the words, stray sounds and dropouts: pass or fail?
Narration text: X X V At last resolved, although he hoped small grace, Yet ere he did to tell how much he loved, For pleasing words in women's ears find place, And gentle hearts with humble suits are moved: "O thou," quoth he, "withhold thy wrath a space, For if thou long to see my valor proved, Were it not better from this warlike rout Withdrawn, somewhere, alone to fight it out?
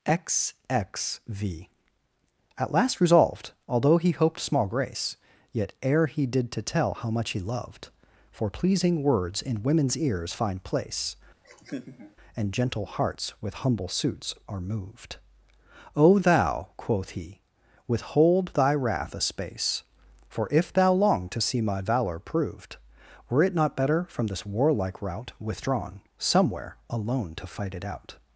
fail